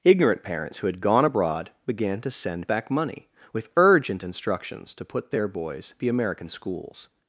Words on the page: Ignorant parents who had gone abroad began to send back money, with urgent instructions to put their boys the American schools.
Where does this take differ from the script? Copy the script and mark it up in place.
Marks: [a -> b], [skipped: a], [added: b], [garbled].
Ignorant parents who had gone abroad began to send back money, with urgent instructions to put their boys the American schools.